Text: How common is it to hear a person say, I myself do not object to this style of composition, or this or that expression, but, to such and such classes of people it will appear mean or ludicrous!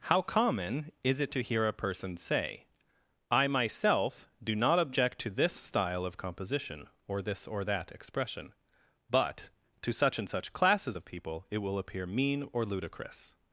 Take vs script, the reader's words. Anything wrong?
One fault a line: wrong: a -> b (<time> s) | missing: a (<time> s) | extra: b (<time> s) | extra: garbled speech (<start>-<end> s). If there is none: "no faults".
no faults